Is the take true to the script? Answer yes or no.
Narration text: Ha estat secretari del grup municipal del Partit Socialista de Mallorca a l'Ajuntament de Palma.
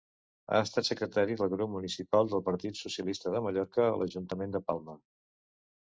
yes